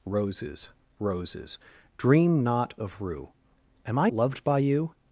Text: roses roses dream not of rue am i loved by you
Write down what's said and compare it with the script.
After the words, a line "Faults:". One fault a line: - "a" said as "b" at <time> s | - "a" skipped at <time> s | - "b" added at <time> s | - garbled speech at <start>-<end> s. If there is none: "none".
roses roses dream not of rue am i loved by you
Faults:
none